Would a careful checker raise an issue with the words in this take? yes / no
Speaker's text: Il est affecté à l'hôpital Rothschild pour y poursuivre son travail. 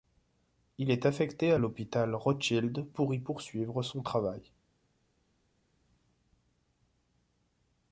no